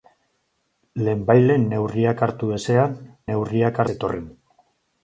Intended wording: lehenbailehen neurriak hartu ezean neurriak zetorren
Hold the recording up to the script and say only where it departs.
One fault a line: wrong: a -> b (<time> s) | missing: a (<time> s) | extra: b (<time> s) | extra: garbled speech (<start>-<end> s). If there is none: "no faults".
no faults